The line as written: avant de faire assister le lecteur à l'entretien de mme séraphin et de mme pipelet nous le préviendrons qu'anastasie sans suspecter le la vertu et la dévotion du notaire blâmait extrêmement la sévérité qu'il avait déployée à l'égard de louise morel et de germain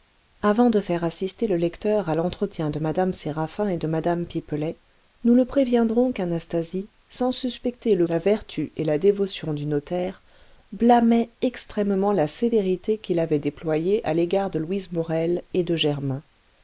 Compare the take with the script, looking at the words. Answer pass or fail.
pass